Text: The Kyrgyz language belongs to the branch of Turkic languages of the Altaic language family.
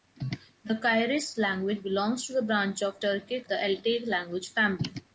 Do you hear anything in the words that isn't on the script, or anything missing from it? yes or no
yes